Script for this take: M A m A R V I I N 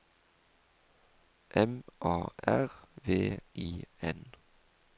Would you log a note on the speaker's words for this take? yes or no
yes